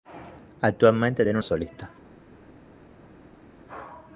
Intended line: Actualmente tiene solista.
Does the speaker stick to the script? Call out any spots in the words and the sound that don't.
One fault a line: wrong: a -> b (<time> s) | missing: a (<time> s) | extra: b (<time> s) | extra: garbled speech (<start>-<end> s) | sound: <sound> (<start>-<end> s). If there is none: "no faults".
no faults